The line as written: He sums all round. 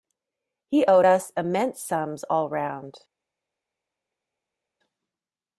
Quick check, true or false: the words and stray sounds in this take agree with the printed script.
false